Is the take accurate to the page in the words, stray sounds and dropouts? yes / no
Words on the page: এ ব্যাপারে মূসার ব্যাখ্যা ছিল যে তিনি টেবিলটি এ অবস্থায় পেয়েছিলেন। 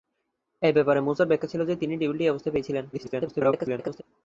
no